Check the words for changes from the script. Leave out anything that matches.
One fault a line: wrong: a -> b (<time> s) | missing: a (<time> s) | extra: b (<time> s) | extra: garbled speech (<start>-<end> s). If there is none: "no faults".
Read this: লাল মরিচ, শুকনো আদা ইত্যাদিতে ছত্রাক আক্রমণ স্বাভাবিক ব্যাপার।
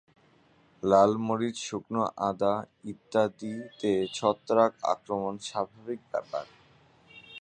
no faults